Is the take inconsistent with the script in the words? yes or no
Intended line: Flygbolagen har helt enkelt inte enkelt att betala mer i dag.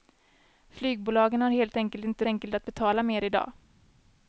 no